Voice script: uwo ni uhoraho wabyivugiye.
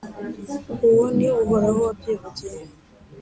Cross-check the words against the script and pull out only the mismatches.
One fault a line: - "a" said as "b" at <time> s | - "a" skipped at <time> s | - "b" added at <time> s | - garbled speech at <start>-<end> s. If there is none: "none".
none